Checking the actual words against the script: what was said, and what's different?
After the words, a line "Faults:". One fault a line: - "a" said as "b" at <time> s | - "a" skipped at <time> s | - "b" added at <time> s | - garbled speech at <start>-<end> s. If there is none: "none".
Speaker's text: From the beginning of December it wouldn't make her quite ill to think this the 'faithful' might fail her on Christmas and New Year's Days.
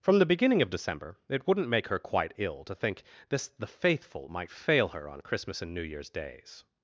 From the beginning of December it wouldn't make her quite ill to think this the 'faithful' might fail her on Christmas and New Year's Days.
Faults:
none